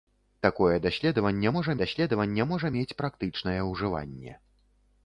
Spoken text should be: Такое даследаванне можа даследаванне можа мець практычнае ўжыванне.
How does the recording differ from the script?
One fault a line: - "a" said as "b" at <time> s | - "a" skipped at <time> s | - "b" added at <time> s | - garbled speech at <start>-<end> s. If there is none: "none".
none